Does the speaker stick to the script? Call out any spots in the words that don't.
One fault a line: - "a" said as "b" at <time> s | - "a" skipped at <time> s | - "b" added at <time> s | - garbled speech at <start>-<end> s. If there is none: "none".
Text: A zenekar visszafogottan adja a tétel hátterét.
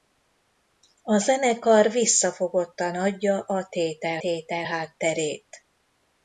- "tétel" added at 4.2 s